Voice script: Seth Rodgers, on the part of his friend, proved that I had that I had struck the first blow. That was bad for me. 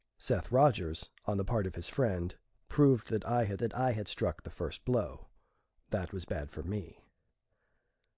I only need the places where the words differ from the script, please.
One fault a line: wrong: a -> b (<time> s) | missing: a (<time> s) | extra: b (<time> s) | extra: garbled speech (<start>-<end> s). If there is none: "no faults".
no faults